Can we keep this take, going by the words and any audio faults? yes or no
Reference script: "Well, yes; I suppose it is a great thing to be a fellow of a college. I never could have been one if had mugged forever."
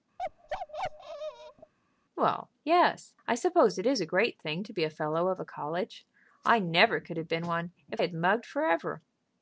no